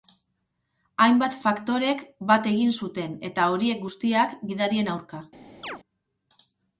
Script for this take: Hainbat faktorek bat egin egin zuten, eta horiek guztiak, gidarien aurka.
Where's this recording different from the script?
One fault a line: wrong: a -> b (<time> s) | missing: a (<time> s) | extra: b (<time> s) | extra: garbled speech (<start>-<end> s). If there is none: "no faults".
missing: egin (2.8 s)